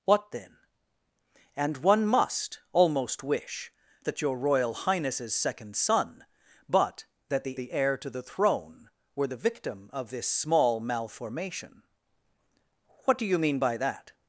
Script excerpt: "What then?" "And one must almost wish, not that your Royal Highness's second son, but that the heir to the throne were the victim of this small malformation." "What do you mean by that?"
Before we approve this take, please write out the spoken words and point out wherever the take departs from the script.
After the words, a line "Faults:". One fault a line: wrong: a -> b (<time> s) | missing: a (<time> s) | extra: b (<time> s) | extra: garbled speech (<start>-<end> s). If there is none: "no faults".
"What then?" "And one must almost wish, that your Royal Highness's second son, but that the the heir to the throne were the victim of this small malformation." "What do you mean by that?"
Faults:
missing: not (3.7 s)
extra: the (7.5 s)